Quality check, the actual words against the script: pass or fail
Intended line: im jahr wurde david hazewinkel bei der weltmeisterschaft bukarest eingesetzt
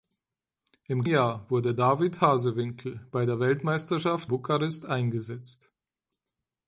pass